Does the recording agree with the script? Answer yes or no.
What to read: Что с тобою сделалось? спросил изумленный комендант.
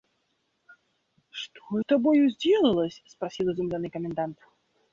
yes